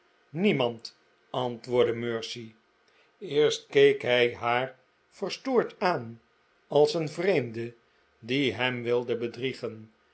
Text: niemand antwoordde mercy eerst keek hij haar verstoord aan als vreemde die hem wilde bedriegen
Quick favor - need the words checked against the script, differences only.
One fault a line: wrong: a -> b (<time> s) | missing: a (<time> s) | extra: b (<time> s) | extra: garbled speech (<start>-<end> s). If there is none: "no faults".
extra: een (6.9 s)